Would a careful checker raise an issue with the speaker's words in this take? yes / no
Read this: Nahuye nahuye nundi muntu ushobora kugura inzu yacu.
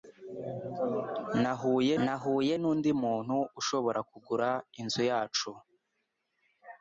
no